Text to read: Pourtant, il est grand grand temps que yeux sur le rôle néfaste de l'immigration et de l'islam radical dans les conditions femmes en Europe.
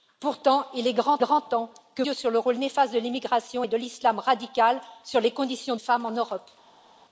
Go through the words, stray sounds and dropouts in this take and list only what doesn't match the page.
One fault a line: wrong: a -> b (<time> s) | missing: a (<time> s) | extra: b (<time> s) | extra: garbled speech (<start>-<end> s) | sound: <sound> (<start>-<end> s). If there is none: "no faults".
no faults